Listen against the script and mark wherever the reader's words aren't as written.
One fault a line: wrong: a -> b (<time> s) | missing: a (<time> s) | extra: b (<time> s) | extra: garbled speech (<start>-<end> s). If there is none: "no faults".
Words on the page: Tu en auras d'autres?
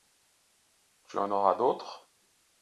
no faults